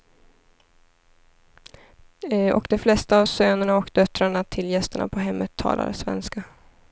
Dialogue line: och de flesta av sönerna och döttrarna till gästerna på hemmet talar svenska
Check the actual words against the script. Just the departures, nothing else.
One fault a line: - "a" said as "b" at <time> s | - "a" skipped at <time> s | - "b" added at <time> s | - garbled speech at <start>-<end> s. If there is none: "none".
none